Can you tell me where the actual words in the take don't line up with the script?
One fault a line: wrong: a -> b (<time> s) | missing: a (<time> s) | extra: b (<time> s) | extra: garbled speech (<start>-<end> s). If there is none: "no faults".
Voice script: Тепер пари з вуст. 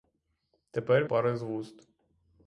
no faults